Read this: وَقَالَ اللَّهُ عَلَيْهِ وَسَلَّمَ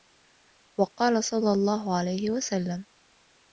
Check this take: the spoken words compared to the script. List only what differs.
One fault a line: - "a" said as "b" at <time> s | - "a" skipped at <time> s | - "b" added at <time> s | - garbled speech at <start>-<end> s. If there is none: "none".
- "صَلَّى" added at 1.2 s